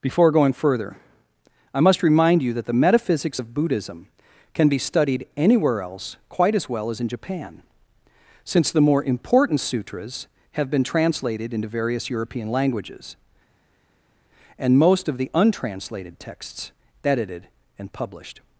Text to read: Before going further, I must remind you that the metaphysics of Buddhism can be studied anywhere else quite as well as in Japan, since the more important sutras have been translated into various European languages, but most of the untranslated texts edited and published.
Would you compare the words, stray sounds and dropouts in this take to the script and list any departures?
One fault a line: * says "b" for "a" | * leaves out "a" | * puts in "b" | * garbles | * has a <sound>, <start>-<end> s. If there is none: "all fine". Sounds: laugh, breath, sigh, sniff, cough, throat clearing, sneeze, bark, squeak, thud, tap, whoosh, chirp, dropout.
* says "and" for "but"